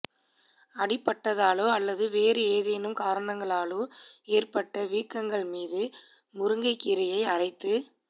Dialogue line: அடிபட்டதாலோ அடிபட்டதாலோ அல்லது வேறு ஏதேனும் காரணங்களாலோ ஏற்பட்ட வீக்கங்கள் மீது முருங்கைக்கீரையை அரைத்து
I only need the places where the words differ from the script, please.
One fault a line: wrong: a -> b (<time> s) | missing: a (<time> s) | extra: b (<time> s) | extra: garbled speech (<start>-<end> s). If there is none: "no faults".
missing: அடிபட்டதாலோ (1.6 s)